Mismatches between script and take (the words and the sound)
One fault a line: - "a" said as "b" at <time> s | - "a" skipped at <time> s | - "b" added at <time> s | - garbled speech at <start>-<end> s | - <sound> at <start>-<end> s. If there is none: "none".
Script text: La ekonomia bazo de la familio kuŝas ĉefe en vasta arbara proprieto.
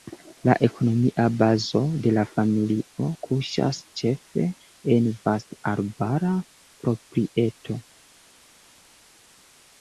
none